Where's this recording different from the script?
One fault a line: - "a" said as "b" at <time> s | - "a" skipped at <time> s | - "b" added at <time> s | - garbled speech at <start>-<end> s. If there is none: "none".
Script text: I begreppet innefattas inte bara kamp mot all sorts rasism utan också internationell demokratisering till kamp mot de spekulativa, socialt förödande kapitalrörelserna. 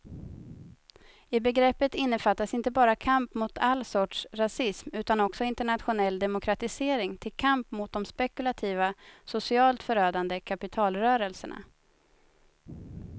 none